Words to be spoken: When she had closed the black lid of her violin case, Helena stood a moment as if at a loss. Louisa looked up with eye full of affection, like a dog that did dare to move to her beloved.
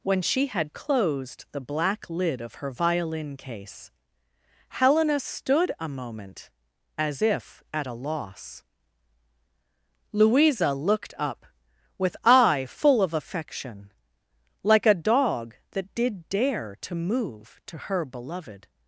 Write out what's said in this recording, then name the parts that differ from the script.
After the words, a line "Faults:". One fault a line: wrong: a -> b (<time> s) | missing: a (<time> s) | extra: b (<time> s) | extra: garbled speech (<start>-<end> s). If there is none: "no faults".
When she had closed the black lid of her violin case, Helena stood a moment as if at a loss. Louisa looked up with eye full of affection, like a dog that did dare to move to her beloved.
Faults:
no faults